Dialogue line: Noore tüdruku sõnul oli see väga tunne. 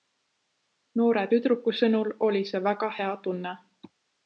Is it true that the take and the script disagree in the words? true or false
true